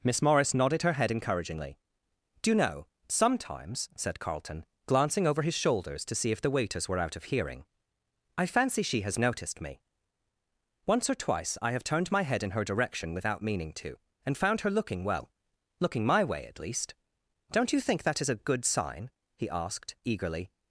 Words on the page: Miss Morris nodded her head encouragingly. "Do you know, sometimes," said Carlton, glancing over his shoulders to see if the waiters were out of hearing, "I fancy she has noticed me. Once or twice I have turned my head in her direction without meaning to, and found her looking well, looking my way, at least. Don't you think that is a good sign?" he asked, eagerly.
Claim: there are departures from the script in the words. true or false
false